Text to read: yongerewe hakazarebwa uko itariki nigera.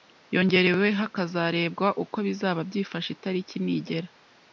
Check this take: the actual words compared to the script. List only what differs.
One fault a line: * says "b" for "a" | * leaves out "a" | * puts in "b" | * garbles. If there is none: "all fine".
* puts in "bizaba byifashe"